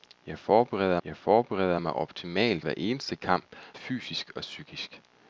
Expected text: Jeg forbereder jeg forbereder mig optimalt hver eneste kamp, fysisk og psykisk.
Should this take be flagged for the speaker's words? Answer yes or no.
no